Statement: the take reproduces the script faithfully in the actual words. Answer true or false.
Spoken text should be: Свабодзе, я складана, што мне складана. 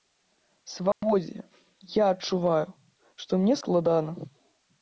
false